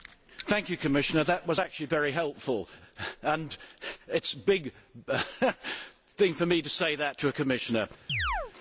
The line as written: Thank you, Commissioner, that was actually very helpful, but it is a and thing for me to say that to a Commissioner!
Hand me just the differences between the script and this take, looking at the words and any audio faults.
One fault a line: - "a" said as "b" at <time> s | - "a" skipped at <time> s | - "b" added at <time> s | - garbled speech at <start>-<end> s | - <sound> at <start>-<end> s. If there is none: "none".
- "but" said as "and" at 3.2 s
- "and" said as "big" at 4.4 s
- chirp at 8.1-8.5 s